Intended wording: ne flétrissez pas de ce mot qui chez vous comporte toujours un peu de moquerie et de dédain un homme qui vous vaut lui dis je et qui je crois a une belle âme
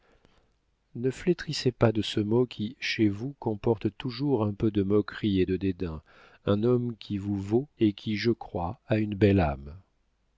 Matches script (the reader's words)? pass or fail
fail